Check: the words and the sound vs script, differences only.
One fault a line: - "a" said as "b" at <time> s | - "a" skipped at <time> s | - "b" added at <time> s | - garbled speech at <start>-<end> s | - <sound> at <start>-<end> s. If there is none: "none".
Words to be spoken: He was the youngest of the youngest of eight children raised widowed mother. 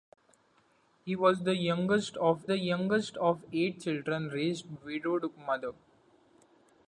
none